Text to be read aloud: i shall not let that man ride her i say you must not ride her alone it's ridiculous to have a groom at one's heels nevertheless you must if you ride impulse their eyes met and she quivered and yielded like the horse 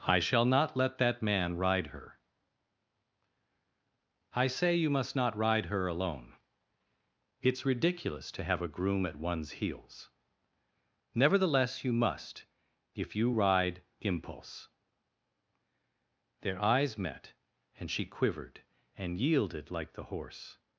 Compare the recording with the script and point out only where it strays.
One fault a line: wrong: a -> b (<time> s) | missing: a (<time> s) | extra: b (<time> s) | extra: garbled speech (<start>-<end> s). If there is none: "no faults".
no faults